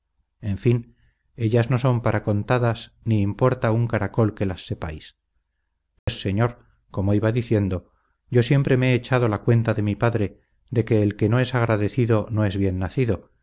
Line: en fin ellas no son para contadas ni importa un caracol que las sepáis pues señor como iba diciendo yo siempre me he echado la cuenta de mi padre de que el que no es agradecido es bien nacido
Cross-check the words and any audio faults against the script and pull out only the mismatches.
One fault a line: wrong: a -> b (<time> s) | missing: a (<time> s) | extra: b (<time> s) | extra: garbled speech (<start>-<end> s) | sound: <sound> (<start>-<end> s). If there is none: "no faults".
sound: dropout (6.0-6.1 s)
extra: no (12.3 s)